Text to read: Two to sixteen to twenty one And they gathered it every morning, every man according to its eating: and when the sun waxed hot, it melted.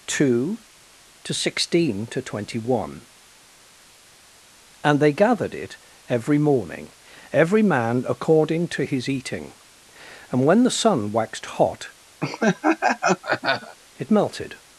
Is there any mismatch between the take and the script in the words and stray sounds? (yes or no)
yes